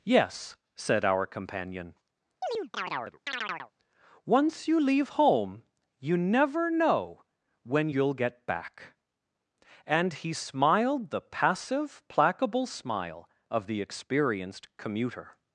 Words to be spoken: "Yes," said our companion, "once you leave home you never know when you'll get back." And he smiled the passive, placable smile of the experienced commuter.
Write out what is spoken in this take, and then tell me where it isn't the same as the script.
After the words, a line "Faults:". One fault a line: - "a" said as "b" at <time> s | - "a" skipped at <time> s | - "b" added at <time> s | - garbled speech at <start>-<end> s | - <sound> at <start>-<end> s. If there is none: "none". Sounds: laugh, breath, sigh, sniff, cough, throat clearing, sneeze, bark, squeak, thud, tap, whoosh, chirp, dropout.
"Yes," said our companion, "once you leave home you never know when you'll get back." And he smiled the passive, placable smile of the experienced commuter.
Faults:
- chirp at 2.4-3.7 s